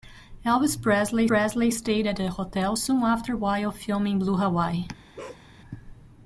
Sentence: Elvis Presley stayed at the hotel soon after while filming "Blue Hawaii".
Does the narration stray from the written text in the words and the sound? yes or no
yes